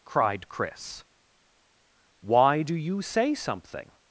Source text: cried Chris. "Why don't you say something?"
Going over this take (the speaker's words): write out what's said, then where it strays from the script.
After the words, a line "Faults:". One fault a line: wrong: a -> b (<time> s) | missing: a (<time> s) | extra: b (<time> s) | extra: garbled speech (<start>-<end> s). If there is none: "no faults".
cried Chris. "Why do you say something?"
Faults:
wrong: don't -> do (2.6 s)